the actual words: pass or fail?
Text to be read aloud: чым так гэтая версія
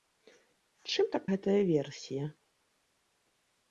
pass